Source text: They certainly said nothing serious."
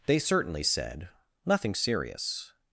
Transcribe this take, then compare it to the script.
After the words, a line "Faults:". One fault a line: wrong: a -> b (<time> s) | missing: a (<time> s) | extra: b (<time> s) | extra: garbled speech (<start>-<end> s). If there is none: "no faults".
They certainly said nothing serious."
Faults:
no faults